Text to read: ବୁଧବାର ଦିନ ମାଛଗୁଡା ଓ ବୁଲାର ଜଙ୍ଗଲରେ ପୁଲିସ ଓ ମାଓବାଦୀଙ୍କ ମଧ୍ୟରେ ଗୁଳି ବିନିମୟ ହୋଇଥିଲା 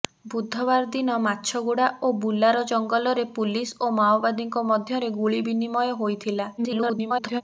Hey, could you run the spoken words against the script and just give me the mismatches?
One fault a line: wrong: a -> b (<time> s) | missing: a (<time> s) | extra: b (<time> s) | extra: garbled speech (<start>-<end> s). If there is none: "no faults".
extra: garbled speech (6.6-7.4 s)